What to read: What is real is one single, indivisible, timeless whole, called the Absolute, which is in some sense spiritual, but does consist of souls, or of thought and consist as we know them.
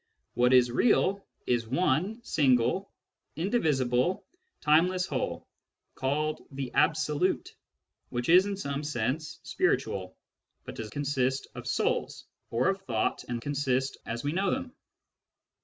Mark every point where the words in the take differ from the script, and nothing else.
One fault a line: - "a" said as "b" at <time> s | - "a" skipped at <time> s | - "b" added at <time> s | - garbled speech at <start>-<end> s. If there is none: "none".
none